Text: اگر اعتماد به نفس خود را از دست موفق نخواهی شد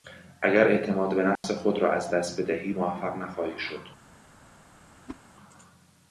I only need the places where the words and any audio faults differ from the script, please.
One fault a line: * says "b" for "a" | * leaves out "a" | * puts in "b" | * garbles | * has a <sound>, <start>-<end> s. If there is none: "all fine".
* has a dropout, 1.4-1.4 s
* puts in "بدهی"
* has a whoosh, 5.1-5.2 s